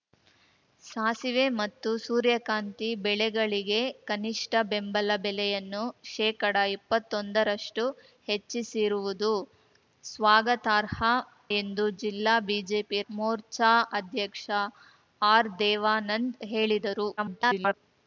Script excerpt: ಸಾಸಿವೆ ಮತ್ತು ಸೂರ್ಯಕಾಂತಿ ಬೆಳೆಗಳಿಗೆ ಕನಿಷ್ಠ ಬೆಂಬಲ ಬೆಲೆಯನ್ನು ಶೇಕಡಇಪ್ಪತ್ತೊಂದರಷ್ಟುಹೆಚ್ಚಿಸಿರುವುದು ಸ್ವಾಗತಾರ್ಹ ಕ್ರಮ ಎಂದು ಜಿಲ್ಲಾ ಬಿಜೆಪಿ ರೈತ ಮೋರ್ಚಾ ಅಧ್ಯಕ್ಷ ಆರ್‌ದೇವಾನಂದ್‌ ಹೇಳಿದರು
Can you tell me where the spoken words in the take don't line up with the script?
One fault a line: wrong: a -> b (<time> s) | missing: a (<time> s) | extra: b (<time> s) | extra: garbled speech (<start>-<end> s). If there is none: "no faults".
missing: ಕ್ರಮ (11.0 s)
missing: ರೈತ (13.0 s)
extra: garbled speech (17.2-17.7 s)